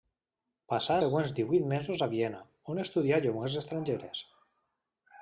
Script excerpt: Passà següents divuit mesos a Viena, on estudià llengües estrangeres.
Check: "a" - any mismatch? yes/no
no